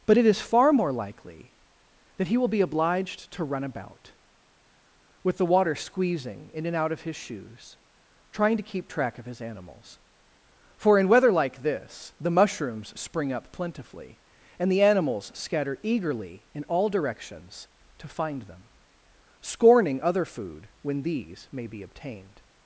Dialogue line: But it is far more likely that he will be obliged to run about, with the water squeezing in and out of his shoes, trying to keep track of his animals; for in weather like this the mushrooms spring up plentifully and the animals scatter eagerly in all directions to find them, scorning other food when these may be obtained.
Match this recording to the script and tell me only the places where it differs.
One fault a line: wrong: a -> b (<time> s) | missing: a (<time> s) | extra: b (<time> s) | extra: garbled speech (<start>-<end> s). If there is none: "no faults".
no faults